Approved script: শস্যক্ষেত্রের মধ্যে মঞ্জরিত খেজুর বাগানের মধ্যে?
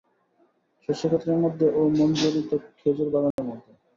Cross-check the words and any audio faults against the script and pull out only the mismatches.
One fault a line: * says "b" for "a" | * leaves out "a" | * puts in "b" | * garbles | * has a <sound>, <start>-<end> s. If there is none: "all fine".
* puts in "ও"
* has a dropout, 3.3-3.4 s